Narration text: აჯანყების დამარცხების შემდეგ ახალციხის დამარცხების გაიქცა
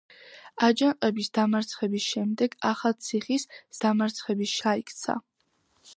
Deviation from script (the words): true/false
false